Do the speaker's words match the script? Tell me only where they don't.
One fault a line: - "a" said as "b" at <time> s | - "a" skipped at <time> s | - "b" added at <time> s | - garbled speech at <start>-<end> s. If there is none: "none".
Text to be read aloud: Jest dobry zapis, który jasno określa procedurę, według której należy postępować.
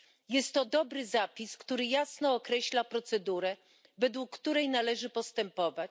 - "to" added at 0.5 s